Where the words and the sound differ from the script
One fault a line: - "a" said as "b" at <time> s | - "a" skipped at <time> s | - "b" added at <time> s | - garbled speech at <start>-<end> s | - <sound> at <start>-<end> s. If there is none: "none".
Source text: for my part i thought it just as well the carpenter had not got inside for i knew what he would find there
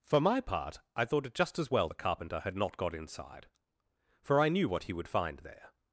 none